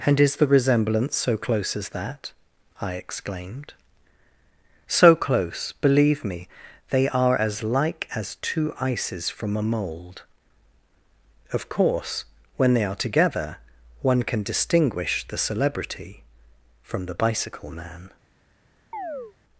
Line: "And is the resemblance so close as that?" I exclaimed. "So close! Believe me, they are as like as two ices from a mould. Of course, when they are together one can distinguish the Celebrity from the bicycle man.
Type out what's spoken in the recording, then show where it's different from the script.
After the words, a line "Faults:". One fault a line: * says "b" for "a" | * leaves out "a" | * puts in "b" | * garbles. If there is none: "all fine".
"And is the resemblance so close as that?" I exclaimed. "So close! Believe me, they are as like as two ices from a mould. Of course, when they are together one can distinguish the Celebrity from the bicycle man.
Faults:
all fine